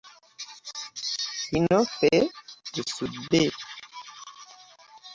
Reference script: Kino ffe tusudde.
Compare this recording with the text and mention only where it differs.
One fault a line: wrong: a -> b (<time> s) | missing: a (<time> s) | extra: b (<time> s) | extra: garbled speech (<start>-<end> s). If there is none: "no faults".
no faults